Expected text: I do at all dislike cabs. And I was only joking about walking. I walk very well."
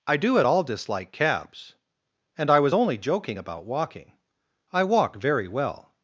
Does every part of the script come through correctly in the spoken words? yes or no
yes